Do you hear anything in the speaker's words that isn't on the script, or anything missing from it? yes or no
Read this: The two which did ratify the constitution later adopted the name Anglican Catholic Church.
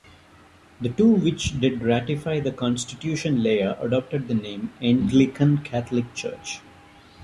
no